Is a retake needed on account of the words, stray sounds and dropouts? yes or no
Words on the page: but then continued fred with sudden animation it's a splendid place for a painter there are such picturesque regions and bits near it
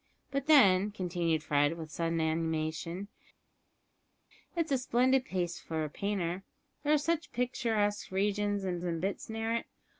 yes